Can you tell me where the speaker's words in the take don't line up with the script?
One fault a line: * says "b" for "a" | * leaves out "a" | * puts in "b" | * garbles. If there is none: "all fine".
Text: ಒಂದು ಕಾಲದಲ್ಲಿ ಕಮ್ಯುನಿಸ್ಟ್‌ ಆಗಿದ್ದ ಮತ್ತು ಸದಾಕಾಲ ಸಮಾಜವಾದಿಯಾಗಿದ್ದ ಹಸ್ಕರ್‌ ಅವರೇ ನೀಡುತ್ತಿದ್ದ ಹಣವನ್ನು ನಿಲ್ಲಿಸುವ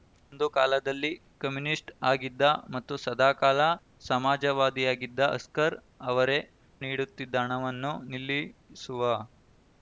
all fine